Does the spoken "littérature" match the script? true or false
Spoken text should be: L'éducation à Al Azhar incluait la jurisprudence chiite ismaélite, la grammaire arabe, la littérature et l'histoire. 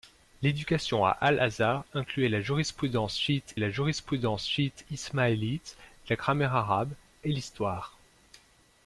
false